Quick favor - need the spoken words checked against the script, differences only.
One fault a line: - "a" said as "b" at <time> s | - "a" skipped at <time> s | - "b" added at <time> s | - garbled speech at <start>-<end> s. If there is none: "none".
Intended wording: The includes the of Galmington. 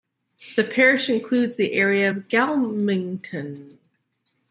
- "parish" added at 0.6 s
- "area" added at 1.7 s